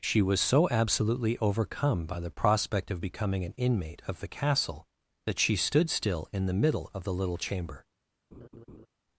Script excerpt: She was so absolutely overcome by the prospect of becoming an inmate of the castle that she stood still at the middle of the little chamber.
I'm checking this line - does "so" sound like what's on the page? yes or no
yes